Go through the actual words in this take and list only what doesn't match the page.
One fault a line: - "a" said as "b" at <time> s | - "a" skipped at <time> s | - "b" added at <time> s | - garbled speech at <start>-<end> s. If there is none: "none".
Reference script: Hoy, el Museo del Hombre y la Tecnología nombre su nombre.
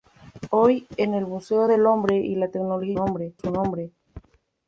none